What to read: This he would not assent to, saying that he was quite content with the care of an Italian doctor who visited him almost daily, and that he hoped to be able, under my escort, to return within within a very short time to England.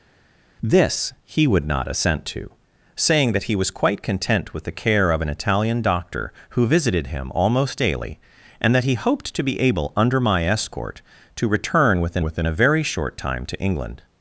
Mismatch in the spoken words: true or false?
false